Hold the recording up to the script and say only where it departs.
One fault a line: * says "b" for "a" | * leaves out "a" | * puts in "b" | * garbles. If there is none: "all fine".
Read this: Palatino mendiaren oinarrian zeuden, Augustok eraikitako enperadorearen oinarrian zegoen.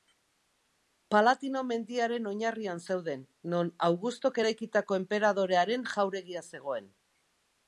* puts in "non"
* says "jauregia" for "oinarrian"